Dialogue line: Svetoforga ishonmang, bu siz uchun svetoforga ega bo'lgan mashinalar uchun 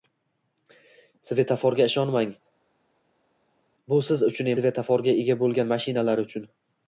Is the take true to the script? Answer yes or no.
yes